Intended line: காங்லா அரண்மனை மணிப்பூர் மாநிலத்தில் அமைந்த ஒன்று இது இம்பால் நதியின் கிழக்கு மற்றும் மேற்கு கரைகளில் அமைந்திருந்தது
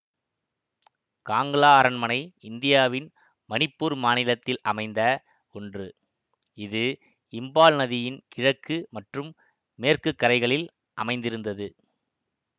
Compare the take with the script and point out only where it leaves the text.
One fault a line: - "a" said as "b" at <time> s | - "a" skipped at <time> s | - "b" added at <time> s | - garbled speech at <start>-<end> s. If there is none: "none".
- "இந்தியாவின்" added at 2.4 s